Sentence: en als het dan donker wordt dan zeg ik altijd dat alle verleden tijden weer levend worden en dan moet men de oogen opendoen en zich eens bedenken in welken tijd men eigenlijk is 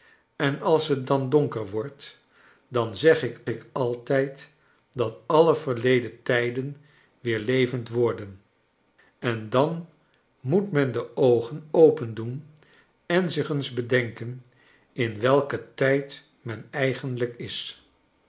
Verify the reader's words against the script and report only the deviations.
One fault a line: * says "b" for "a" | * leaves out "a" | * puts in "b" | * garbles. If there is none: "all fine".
* puts in "ik"